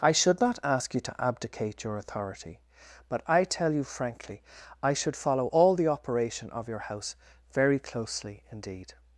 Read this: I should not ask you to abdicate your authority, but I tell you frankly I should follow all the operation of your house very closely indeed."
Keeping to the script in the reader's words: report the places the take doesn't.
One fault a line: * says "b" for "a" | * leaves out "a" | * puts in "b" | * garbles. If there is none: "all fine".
all fine